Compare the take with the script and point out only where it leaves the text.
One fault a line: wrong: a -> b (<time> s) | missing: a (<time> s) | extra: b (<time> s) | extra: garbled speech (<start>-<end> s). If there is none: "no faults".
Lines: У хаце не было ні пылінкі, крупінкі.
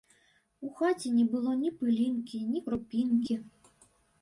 extra: ні (2.5 s)